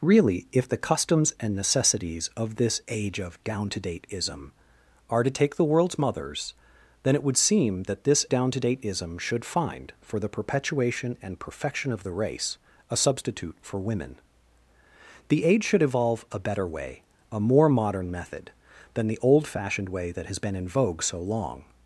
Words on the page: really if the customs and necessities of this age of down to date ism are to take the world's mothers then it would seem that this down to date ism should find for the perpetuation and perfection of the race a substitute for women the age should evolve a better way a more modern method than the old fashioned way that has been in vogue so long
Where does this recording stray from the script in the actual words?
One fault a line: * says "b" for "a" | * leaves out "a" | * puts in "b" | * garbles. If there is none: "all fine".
all fine